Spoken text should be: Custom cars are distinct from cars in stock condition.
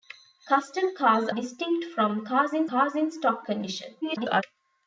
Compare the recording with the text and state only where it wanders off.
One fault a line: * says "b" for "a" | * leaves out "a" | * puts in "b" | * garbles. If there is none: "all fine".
* leaves out "are"
* puts in "cars in"
* garbles